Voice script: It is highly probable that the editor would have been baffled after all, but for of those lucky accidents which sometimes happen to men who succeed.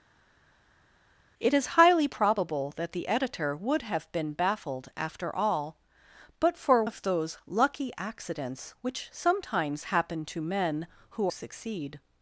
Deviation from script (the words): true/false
false